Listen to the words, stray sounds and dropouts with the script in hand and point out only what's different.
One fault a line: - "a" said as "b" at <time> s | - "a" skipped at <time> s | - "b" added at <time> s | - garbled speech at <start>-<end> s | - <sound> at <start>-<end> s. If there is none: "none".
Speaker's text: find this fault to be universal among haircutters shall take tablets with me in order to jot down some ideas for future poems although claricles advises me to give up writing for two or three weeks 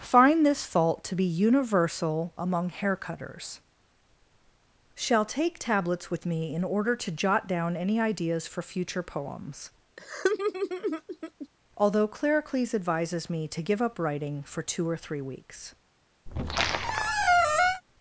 - "some" said as "any" at 7.8 s
- laugh at 10.0-11.5 s
- squeak at 16.3-17.8 s